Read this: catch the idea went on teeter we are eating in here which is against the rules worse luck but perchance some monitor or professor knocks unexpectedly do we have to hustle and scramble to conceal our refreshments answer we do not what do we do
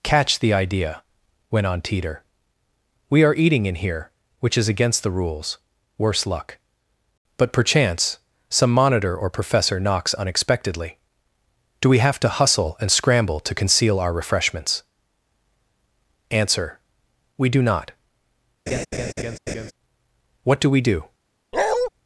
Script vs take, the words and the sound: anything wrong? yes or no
yes